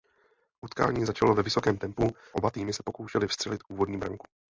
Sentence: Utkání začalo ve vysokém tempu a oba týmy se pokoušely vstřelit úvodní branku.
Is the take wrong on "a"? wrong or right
wrong